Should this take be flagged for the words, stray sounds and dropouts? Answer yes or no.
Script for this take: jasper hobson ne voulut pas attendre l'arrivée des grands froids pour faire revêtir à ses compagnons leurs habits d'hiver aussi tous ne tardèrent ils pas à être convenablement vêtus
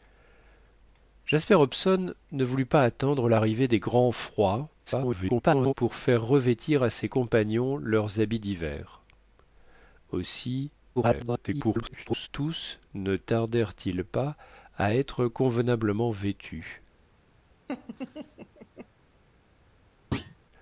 yes